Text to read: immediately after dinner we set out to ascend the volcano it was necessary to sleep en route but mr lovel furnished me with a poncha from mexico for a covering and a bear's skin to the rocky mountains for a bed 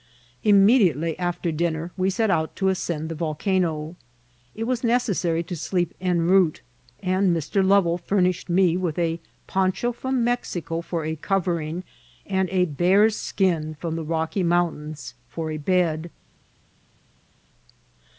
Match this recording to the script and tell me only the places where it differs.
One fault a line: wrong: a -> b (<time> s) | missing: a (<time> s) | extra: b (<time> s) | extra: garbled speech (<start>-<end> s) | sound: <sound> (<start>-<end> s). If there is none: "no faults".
wrong: but -> and (7.0 s)
wrong: to -> from (13.7 s)